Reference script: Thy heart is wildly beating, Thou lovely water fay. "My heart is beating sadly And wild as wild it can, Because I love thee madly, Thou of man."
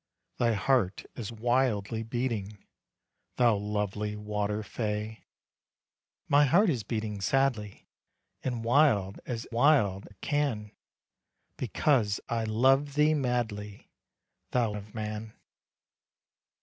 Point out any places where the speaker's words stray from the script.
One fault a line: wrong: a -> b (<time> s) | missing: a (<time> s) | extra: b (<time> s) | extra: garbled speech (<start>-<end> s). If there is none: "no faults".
no faults